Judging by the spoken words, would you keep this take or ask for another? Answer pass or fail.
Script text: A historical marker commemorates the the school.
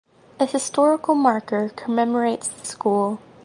pass